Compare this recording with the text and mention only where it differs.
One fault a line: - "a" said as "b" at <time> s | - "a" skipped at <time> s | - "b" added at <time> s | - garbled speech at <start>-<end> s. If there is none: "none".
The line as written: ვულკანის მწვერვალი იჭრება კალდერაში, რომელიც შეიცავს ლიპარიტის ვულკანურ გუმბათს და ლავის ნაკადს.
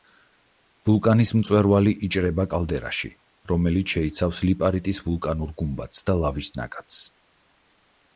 none